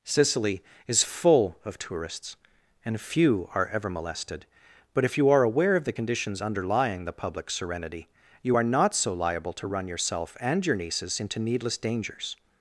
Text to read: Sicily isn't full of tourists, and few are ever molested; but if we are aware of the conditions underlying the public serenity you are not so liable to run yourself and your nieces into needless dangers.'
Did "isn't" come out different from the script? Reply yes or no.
yes